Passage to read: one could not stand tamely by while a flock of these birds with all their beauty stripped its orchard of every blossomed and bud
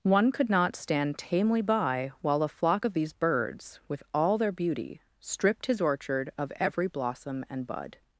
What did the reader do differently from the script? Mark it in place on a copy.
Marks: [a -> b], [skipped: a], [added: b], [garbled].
one could not stand tamely by while a flock of these birds with all their beauty stripped [its -> his] orchard of every [blossomed -> blossom] and bud